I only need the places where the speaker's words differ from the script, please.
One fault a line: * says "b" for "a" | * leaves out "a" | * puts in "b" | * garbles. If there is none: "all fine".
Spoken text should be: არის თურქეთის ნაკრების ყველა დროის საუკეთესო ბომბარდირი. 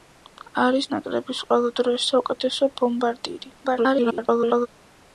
* leaves out "თურქეთის"
* garbles